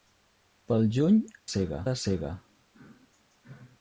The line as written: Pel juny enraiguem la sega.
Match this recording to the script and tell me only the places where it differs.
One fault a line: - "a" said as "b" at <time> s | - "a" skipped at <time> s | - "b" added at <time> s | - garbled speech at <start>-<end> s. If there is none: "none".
- "enraiguem" said as "sega" at 1.5 s